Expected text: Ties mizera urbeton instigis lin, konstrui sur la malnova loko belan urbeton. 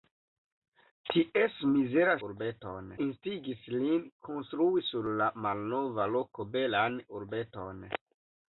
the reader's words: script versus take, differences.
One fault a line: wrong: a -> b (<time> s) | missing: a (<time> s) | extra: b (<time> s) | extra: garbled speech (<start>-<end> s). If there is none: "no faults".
no faults